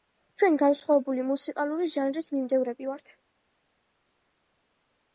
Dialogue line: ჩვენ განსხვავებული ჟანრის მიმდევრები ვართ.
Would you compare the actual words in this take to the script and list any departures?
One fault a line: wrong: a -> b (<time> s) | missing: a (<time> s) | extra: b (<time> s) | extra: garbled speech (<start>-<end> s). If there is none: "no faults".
extra: მუსიკალური (1.3 s)